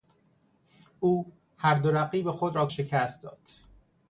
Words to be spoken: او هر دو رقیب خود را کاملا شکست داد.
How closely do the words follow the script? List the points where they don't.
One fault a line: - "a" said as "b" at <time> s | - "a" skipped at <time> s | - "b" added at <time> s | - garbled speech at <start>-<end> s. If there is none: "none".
- "کاملا" skipped at 2.7 s